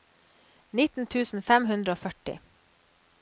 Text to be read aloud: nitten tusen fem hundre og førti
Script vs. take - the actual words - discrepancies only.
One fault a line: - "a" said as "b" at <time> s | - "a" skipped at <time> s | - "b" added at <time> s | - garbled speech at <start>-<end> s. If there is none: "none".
none